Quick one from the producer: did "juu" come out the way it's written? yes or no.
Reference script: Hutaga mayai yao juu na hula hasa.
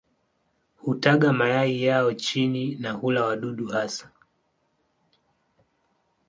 no